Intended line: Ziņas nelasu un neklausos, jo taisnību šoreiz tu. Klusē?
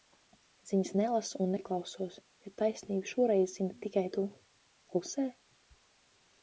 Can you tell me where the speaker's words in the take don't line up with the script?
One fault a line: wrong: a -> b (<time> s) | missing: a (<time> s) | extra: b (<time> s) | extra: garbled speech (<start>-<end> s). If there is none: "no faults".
extra: zini tikai (3.6 s)